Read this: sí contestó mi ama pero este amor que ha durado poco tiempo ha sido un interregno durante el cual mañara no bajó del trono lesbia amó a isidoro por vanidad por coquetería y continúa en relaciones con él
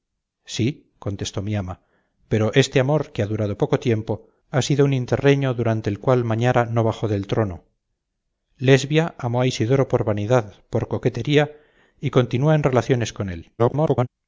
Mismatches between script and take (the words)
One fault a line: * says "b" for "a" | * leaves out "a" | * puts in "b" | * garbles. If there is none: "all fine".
* garbles